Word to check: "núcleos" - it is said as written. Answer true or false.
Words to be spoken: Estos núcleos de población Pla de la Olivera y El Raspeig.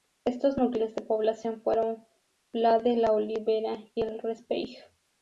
true